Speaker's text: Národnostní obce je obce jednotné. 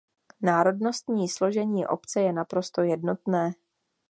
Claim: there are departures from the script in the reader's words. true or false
true